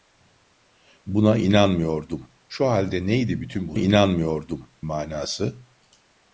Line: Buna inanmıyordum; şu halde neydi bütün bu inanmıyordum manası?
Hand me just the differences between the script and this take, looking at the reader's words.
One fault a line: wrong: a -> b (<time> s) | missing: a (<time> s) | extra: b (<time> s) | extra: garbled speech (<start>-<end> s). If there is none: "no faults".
no faults